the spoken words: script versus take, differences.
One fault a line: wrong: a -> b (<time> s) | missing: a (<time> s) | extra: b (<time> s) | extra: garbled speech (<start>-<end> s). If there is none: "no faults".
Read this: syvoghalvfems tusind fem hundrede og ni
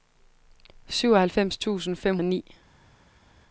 missing: hundrede (2.2 s)